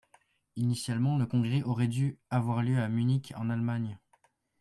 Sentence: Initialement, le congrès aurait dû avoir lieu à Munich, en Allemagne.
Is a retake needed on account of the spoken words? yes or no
no